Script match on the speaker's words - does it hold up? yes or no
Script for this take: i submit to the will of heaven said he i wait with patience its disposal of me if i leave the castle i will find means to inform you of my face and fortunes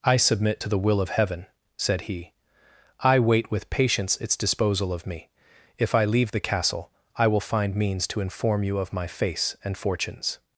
yes